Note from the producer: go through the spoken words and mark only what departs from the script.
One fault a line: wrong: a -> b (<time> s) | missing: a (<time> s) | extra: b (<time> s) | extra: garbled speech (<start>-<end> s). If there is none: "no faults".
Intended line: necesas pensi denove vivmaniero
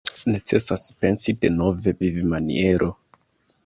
no faults